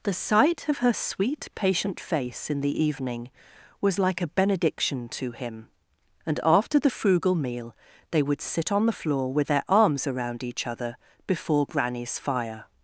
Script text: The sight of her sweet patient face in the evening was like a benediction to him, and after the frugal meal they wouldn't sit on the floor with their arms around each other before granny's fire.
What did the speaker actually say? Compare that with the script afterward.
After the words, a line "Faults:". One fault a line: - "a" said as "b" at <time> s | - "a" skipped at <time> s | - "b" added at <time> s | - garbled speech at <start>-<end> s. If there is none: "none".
The sight of her sweet patient face in the evening was like a benediction to him, and after the frugal meal they would sit on the floor with their arms around each other before granny's fire.
Faults:
- "wouldn't" said as "would" at 8.2 s